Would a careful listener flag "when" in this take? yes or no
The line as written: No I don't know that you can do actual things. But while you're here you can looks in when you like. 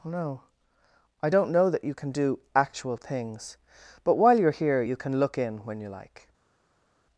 no